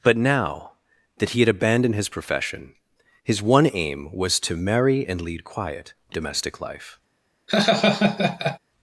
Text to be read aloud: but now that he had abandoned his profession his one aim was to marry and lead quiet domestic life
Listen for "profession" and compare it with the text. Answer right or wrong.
right